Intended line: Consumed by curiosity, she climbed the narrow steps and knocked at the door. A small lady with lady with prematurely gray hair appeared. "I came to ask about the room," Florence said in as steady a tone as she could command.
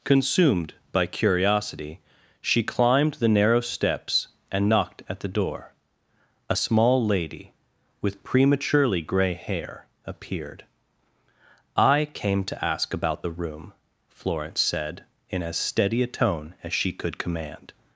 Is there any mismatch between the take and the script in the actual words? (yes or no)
yes